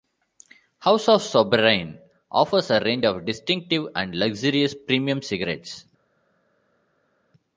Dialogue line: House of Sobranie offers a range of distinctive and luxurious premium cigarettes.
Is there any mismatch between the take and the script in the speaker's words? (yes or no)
no